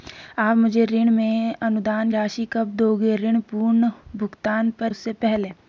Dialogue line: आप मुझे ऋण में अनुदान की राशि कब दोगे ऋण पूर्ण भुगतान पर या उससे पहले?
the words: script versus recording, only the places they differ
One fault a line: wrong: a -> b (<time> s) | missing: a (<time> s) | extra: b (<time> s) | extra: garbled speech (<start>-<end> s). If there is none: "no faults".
missing: की (2.1 s)
missing: या (4.9 s)